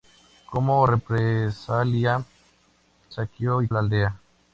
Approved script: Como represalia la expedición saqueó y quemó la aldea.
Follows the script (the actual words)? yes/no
no